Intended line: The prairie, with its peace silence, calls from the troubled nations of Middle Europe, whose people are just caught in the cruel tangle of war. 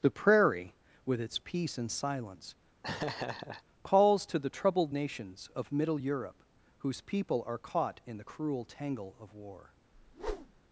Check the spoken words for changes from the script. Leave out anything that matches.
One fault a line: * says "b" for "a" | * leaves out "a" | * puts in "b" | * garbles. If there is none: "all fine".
* puts in "and"
* says "to" for "from"
* leaves out "just"